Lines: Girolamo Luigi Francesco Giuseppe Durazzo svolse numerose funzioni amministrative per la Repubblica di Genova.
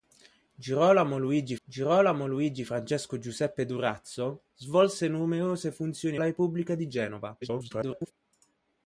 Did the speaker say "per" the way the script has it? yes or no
no